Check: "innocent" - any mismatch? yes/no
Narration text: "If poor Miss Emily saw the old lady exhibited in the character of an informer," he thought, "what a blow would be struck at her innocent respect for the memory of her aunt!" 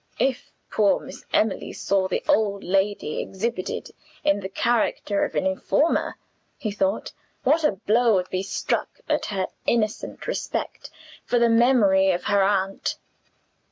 no